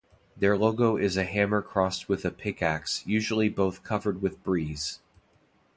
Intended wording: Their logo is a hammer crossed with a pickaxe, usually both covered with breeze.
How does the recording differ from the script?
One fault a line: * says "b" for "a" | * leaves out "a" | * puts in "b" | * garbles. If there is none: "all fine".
all fine